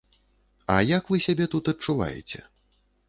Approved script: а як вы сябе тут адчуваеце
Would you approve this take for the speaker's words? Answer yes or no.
yes